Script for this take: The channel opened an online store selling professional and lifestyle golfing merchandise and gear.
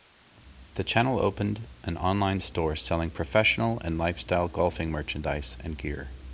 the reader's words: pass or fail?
pass